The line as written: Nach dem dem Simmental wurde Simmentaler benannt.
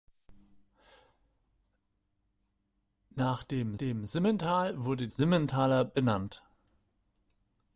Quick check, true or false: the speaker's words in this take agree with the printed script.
true